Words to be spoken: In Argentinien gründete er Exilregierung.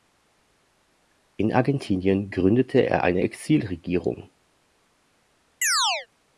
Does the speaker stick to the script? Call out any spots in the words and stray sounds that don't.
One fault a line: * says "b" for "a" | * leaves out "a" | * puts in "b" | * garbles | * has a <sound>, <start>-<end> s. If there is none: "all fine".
* puts in "eine"
* has a chirp, 5.6-6.1 s